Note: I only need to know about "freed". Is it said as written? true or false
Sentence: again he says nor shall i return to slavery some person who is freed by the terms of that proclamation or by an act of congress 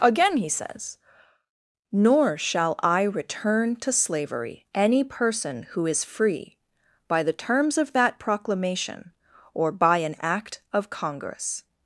false